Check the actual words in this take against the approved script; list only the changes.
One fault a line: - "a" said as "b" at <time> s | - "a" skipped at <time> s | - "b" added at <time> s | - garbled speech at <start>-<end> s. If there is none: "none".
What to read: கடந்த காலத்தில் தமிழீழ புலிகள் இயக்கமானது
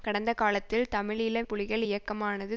none